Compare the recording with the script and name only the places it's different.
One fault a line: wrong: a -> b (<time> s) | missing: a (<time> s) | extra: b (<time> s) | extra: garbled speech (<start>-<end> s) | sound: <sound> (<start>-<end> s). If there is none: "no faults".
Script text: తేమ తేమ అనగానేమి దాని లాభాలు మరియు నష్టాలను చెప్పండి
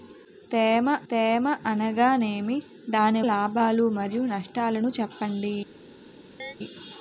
sound: chirp (6.4-6.6 s)